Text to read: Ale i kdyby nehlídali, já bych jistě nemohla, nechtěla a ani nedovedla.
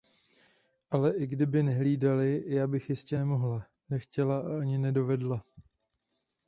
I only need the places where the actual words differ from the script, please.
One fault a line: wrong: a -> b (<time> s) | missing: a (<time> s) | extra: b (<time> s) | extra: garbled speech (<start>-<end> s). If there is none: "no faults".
no faults